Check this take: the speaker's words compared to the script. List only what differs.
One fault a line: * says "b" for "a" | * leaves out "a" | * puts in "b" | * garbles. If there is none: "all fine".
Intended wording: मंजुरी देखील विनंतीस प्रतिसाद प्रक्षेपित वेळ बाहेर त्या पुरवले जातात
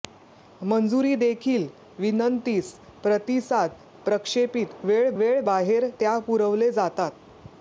* puts in "वेळ"